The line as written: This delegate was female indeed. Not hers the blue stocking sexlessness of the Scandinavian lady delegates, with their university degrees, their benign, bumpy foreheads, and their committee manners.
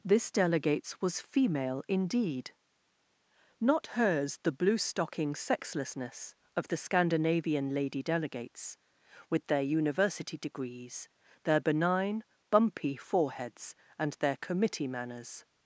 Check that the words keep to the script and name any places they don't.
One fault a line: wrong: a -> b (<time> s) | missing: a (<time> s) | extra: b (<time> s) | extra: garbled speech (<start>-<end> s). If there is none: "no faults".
wrong: delegate -> delegates (0.3 s)